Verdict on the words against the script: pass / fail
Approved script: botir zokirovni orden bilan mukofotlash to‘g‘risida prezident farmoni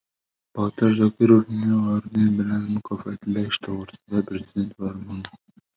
pass